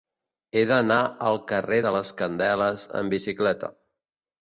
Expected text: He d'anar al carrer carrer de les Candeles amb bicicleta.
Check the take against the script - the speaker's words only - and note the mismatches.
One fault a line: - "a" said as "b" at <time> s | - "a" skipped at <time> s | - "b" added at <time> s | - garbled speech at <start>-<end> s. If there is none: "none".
- "carrer" skipped at 1.8 s